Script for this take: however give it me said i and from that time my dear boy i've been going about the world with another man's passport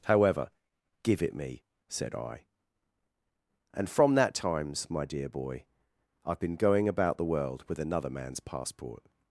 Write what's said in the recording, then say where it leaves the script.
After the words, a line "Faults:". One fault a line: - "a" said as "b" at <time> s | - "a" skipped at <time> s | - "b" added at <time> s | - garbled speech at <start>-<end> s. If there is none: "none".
however give it me said i and from that times my dear boy i've been going about the world with another man's passport
Faults:
- "time" said as "times" at 4.3 s